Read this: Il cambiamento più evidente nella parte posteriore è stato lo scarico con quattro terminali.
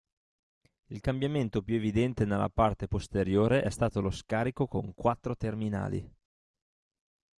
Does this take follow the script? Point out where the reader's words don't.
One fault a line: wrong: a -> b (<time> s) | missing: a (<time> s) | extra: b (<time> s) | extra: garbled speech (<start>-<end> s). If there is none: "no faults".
no faults